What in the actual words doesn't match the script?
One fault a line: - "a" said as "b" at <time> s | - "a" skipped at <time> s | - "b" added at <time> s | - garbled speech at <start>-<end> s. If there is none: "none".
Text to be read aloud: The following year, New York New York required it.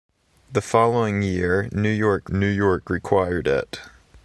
none